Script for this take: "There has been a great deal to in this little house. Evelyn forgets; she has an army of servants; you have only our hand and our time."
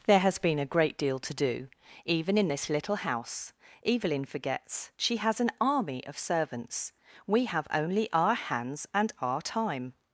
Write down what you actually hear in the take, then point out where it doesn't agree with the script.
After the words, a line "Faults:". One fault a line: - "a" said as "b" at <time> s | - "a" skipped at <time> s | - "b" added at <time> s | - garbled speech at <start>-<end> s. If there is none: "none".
"There has been a great deal to do, even in this little house. Evelyn forgets; she has an army of servants; we have only our hands and our time."
Faults:
- "do even" added at 1.3 s
- "you" said as "we" at 7.3 s
- "hand" said as "hands" at 8.4 s